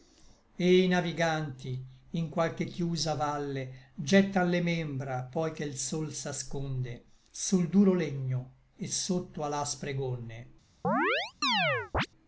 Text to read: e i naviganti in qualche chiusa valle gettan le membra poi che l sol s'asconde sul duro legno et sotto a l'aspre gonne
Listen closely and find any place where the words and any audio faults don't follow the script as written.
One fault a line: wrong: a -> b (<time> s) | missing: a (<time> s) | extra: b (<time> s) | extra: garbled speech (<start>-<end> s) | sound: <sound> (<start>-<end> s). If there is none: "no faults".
sound: chirp (10.8-12.1 s)